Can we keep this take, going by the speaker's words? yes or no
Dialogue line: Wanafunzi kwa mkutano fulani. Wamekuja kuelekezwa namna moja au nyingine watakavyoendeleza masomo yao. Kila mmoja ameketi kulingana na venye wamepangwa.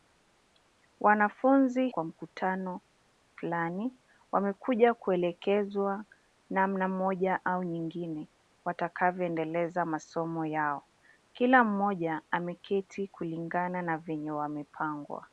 yes